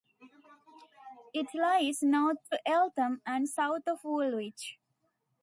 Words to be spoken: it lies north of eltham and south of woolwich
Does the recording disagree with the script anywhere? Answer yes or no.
no